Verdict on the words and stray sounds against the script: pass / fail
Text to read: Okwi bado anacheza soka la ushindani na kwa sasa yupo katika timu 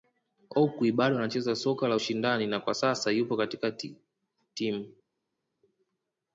pass